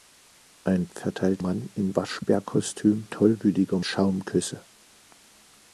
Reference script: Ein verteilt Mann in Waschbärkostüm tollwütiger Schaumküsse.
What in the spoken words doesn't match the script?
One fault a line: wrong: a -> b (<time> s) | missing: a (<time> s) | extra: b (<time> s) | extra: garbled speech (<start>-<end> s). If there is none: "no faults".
no faults